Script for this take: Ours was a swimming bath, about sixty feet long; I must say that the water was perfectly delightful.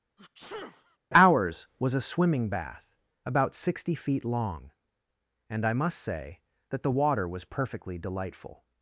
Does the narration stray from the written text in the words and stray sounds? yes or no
yes